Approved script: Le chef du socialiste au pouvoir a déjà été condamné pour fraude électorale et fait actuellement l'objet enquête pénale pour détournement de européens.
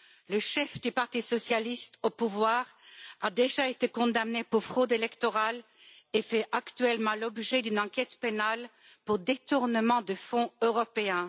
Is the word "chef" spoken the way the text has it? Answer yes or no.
yes